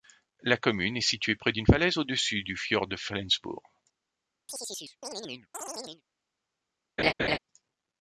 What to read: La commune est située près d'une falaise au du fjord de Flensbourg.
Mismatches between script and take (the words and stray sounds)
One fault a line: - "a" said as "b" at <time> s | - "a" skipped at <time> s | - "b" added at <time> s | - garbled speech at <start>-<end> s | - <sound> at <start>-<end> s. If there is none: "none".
- "dessus" added at 2.0 s
- chirp at 4.5-6.0 s
- laugh at 7.0-7.4 s